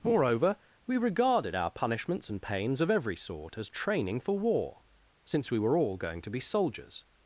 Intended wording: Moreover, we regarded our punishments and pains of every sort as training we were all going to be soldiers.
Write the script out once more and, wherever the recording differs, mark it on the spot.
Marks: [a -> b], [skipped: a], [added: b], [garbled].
Moreover, we regarded our punishments and pains of every sort as training [added: for war since] we were all going to be soldiers.